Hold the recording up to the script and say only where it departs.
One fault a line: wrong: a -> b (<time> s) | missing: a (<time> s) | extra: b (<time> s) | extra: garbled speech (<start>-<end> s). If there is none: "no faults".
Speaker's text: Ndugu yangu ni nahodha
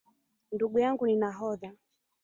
no faults